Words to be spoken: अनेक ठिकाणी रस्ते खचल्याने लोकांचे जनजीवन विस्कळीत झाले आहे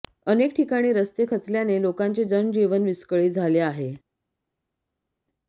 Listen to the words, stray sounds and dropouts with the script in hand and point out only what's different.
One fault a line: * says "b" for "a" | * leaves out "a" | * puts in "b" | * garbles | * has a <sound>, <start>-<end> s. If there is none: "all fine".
all fine